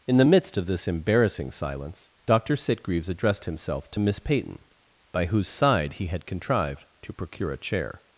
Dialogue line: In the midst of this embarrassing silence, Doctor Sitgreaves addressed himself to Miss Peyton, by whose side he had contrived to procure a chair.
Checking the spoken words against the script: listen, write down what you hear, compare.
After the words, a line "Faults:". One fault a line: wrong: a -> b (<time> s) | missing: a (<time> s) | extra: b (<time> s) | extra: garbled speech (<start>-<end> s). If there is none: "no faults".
In the midst of this embarrassing silence, Doctor Sitgreaves addressed himself to Miss Peyton, by whose side he had contrived to procure a chair.
Faults:
no faults